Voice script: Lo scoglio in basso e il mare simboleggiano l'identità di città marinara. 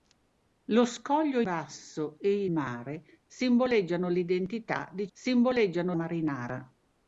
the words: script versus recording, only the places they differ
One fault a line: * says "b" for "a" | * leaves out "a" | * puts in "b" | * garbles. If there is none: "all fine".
* leaves out "in"
* leaves out "il"
* says "simboleggiano" for "città"